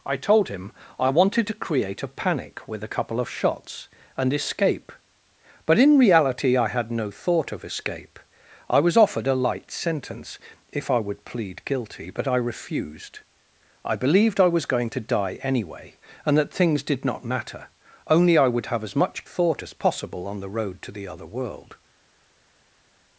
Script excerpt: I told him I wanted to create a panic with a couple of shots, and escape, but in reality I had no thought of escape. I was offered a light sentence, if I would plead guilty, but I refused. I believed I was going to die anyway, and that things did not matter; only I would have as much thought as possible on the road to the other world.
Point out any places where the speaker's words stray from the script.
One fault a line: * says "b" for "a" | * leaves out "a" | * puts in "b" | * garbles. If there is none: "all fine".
all fine